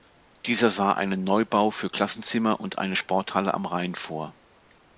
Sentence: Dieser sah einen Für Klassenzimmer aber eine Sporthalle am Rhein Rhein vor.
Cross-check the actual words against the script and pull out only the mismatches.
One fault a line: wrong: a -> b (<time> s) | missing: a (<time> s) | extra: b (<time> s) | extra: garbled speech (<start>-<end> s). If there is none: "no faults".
extra: Neubau (1.2 s)
wrong: aber -> und (2.6 s)
missing: Rhein (4.0 s)